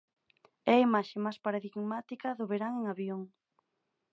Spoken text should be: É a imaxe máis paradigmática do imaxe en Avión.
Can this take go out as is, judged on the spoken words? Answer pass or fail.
fail